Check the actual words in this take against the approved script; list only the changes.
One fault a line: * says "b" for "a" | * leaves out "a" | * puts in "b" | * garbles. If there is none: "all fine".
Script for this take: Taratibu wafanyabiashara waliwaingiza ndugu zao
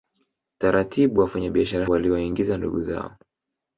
all fine